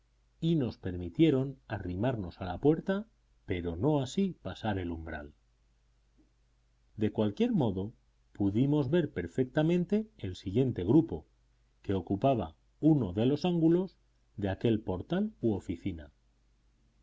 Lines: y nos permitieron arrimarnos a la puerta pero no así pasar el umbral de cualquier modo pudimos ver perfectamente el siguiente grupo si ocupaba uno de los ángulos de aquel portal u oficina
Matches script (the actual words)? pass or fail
fail